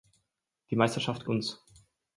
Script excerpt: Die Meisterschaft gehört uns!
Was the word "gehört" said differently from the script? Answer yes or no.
yes